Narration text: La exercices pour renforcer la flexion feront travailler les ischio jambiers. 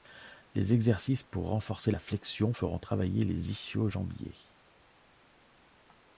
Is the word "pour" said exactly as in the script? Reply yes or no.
yes